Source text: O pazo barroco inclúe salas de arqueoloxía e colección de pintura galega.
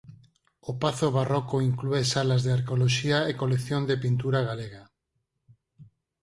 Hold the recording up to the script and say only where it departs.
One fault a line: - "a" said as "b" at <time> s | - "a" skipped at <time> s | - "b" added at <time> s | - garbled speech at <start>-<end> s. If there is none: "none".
none